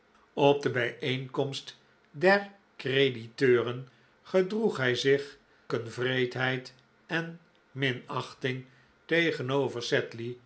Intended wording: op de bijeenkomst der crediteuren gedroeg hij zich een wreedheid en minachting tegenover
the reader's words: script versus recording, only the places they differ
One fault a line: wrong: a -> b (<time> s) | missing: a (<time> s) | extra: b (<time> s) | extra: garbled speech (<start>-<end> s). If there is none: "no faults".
no faults